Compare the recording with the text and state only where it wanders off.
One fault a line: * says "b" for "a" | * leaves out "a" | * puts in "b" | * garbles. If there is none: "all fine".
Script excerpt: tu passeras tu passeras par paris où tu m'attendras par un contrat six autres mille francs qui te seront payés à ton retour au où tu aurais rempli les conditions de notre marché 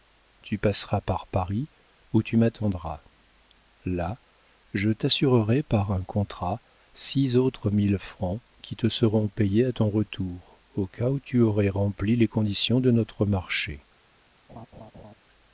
* leaves out "tu passeras"
* puts in "là je t'assurerai"
* puts in "cas"